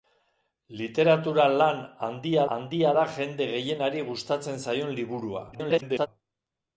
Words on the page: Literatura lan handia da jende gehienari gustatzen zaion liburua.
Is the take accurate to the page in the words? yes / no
no